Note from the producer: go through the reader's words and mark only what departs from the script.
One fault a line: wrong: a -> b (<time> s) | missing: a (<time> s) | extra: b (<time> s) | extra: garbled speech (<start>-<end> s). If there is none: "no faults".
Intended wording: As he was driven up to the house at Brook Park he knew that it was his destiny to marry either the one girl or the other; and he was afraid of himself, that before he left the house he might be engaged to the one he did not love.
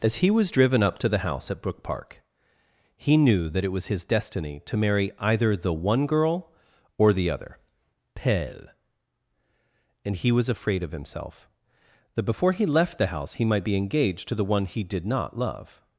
extra: pelle (8.1 s)